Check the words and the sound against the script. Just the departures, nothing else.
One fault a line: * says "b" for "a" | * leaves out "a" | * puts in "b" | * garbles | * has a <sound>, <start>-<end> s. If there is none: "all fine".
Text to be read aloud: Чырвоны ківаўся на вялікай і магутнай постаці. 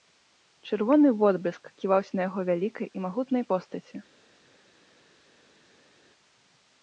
* puts in "водбліск"
* puts in "яго"